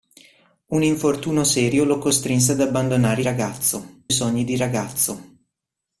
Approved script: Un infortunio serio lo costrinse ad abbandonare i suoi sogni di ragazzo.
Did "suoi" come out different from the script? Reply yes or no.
yes